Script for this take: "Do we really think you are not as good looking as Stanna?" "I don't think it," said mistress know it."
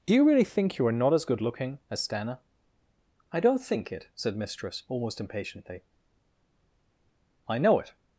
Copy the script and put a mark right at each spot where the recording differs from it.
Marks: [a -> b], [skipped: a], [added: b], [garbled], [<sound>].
"Do [we -> you] really think you are not as good looking as Stanna?" "I don't think it," said mistress [added: almost impatiently I] know it."